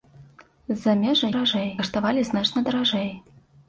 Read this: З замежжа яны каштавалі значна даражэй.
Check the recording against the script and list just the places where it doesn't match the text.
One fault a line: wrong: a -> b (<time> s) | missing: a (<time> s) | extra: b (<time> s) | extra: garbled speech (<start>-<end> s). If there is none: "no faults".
wrong: яны -> даражэй (1.3 s)